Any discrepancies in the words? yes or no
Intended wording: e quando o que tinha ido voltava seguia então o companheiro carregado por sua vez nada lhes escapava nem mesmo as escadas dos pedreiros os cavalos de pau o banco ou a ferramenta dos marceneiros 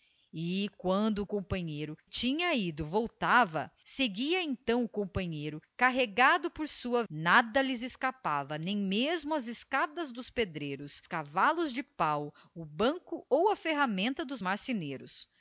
yes